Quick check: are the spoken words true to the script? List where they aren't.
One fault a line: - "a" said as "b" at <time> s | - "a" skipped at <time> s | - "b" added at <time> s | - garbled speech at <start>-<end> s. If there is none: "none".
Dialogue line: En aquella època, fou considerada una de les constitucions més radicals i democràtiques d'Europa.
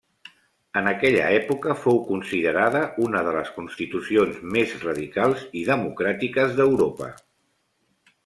none